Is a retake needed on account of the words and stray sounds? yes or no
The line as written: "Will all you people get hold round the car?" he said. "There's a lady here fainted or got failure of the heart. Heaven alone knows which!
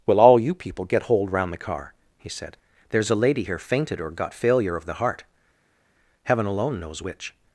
no